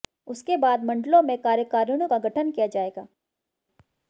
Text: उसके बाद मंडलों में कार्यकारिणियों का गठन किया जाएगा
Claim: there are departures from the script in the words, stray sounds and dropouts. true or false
false